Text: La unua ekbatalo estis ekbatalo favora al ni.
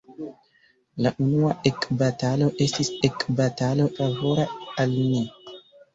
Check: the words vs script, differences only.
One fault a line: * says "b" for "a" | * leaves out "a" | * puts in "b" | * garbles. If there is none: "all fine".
all fine